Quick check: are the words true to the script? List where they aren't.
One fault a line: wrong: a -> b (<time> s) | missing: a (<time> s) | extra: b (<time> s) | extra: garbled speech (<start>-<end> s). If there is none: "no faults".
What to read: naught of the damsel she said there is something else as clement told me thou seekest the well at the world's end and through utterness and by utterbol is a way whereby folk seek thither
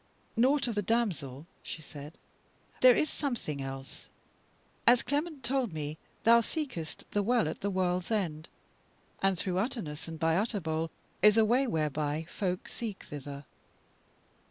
no faults